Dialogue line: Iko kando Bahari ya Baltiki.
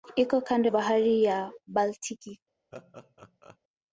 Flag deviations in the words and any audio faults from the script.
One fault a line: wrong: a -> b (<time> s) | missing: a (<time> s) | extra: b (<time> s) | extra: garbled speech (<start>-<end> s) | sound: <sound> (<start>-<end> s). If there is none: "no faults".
sound: laugh (2.7-3.6 s)